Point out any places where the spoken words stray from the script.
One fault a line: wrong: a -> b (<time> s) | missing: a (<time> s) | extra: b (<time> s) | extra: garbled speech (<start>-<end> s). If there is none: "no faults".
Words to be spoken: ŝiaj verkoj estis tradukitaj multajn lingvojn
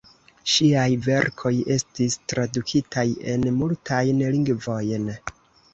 extra: en (3.4 s)